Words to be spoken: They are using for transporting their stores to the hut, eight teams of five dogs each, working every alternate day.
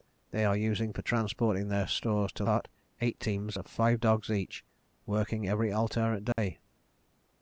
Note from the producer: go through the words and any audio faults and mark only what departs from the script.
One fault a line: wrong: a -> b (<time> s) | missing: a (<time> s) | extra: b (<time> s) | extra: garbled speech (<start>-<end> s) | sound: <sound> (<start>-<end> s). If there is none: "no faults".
missing: the (2.4 s)
sound: dropout (6.3-6.4 s)